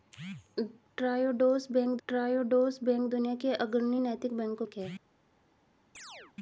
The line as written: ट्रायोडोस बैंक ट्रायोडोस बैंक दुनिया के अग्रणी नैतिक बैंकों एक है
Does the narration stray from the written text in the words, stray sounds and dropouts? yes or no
yes